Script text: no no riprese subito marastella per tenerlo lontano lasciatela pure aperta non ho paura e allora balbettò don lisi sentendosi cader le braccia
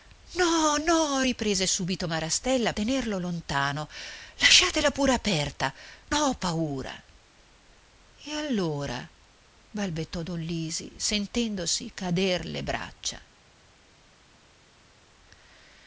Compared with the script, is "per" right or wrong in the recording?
wrong